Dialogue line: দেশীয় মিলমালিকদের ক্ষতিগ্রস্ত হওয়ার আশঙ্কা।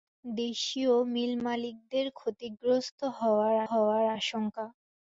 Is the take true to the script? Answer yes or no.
no